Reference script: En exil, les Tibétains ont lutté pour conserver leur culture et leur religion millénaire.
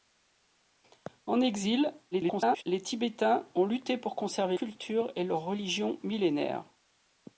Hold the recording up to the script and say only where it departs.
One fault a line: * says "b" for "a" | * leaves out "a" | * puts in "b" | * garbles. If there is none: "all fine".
* garbles
* leaves out "leur"